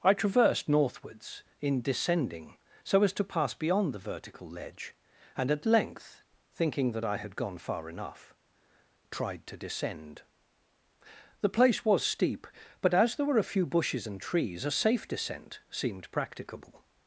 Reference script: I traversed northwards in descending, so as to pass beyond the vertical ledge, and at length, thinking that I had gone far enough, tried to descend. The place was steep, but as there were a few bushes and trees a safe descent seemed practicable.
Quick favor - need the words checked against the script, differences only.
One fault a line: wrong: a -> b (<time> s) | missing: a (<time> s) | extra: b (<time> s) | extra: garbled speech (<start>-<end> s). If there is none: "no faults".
no faults